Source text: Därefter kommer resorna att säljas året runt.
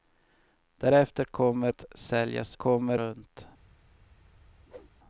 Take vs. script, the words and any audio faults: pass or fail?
fail